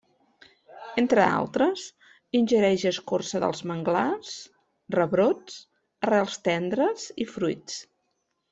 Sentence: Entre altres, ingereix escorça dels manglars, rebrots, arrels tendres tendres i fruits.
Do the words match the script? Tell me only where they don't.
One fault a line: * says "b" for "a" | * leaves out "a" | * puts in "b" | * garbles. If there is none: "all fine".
* leaves out "tendres"